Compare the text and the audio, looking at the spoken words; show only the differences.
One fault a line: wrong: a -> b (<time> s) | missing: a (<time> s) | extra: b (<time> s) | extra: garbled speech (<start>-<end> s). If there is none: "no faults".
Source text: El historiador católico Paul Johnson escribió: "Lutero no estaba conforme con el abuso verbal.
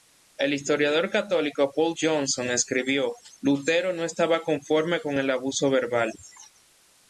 no faults